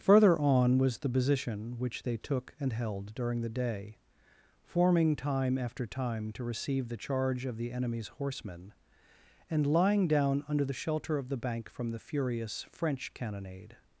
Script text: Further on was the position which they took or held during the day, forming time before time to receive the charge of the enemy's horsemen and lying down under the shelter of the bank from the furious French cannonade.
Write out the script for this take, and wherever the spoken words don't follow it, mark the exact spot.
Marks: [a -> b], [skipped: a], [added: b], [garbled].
Further on was the position which they took [or -> and] held during the day, forming time [before -> after] time to receive the charge of the enemy's horsemen and lying down under the shelter of the bank from the furious French cannonade.